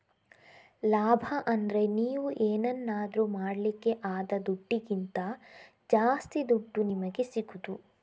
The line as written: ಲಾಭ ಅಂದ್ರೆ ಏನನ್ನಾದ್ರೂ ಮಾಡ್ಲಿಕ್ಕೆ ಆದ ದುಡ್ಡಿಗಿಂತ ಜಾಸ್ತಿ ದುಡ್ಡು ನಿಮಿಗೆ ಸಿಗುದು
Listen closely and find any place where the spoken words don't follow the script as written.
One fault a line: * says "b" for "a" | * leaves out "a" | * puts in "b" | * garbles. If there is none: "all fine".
* puts in "ನೀವು"